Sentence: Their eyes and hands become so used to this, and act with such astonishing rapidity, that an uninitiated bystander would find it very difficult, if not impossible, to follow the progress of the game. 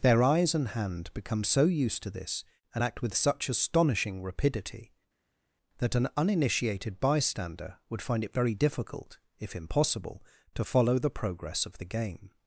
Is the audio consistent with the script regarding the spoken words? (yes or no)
no